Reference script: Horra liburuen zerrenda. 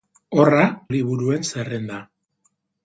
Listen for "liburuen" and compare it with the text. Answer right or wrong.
right